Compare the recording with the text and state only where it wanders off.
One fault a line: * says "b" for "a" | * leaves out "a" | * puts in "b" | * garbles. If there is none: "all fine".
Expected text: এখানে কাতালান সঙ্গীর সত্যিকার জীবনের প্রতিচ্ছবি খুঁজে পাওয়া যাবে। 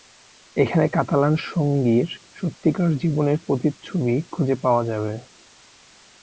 all fine